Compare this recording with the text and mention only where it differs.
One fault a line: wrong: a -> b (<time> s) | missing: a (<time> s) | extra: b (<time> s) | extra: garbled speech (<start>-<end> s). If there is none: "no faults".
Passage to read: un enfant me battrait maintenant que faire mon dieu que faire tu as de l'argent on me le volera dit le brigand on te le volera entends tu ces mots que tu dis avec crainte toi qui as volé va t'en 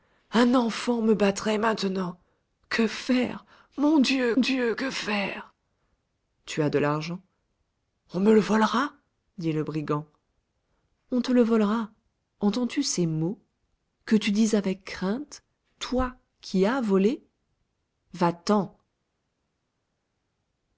extra: dieu (4.4 s)